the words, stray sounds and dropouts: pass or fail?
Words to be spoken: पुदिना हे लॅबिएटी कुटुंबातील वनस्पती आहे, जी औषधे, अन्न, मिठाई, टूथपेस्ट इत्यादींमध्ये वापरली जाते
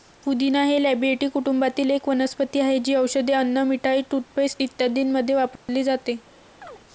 fail